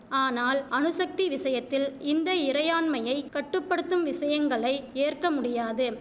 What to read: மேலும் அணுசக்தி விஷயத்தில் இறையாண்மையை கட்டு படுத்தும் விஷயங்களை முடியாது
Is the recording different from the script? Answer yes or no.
yes